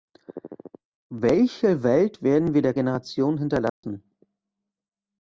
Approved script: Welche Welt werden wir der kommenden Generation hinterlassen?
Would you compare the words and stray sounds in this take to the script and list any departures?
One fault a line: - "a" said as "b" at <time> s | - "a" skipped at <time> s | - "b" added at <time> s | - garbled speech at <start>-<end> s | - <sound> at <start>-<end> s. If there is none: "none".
- "kommenden" skipped at 2.7 s
- dropout at 3.7-3.8 s